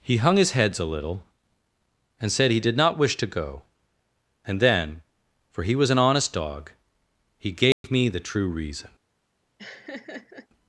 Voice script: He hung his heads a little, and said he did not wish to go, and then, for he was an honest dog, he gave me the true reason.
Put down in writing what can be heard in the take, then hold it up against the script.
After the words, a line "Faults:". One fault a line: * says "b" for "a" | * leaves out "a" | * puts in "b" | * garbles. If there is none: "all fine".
He hung his heads a little, and said he did not wish to go, and then, for he was an honest dog, he gave me the true reason.
Faults:
all fine